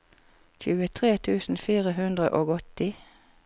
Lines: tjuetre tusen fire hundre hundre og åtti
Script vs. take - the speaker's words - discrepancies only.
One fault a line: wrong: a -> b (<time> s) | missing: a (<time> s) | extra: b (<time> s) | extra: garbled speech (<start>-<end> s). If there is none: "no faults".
missing: hundre (2.3 s)